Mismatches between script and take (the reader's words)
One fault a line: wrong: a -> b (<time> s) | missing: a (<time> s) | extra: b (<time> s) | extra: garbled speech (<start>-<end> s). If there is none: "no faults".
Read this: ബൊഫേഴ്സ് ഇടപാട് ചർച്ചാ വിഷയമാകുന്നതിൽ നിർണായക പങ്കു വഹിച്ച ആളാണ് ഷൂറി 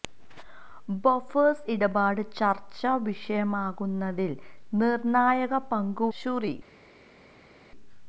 missing: വഹിച്ച ആളാണ് (6.1 s)